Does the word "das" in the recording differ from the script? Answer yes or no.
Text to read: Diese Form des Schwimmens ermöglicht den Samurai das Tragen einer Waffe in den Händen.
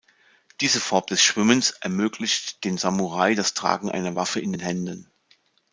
no